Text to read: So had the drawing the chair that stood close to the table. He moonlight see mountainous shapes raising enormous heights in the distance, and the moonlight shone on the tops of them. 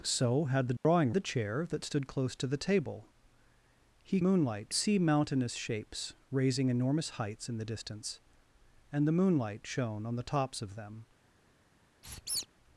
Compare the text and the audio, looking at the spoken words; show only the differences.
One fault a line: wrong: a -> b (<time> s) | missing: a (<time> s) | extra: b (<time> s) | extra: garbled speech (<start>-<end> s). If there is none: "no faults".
no faults